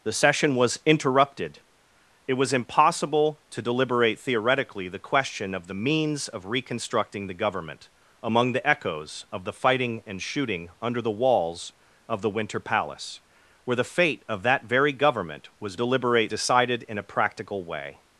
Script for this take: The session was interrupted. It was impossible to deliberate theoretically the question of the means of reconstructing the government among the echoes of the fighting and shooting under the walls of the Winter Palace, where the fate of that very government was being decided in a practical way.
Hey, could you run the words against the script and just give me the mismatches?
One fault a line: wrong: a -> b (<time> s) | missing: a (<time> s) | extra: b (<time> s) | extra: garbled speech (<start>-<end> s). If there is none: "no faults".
wrong: being -> deliberate (15.7 s)